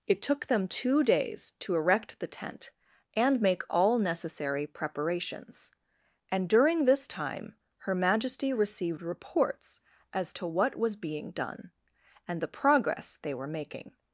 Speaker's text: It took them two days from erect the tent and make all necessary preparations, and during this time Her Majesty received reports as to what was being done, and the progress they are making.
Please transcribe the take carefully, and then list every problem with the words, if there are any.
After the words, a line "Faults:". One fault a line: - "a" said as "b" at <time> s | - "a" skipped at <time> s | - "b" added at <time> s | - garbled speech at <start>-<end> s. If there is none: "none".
It took them two days to erect the tent and make all necessary preparations, and during this time Her Majesty received reports as to what was being done, and the progress they were making.
Faults:
- "from" said as "to" at 1.6 s
- "are" said as "were" at 13.3 s